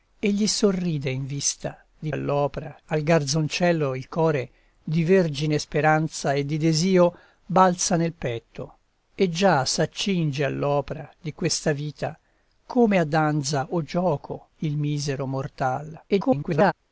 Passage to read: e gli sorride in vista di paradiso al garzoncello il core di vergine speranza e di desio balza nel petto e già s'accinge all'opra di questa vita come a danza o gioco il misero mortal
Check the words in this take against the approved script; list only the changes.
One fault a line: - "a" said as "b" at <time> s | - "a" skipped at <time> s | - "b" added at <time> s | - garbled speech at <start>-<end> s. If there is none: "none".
- "paradiso" said as "all'opra" at 2.1 s
- garbled speech at 16.1-16.7 s